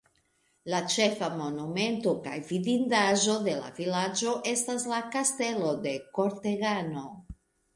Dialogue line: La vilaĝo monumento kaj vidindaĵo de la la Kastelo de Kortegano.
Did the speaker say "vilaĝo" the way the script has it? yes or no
no